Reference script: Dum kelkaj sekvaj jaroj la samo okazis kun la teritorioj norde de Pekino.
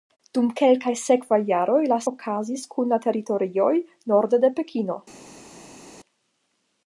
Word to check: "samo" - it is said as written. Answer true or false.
false